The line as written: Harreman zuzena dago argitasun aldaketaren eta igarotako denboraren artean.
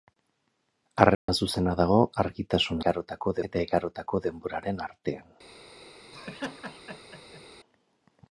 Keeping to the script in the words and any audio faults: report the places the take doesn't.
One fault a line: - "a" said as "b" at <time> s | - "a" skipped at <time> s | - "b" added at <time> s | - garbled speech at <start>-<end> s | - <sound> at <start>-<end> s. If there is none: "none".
- dropout at 1.1-1.3 s
- "aldaketaren" said as "igarotako" at 2.8 s
- laugh at 6.1-7.4 s